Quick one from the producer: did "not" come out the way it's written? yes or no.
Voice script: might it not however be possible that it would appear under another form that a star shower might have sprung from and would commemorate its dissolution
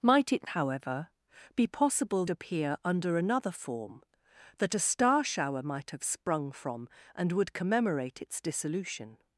no